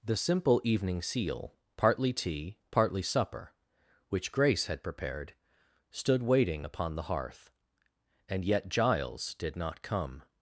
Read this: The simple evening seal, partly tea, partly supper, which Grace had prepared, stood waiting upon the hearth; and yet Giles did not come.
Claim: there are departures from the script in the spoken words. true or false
false